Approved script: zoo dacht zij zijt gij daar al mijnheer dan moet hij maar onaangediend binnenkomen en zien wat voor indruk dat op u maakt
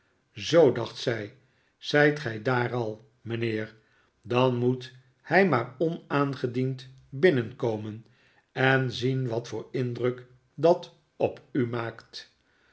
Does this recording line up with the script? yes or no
yes